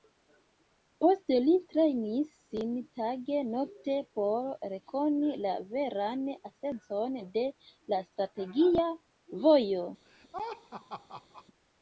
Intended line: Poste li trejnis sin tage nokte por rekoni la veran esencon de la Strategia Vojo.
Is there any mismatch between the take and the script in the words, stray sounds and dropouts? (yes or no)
yes